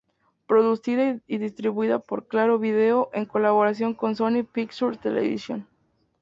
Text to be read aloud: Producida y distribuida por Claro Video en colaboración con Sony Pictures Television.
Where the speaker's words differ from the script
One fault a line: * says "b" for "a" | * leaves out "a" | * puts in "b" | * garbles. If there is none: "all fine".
all fine